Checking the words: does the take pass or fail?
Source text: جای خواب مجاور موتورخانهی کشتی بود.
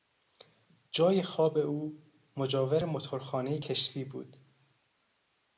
fail